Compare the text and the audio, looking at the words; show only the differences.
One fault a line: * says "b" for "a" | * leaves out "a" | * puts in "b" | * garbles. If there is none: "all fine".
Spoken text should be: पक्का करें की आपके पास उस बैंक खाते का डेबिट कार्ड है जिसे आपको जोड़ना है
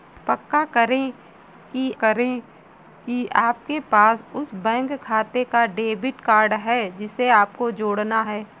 * puts in "करें की"